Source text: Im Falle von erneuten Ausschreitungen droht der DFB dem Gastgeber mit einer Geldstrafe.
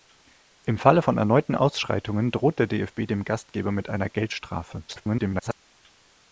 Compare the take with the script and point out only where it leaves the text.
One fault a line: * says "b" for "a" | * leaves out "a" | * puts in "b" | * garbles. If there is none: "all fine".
* garbles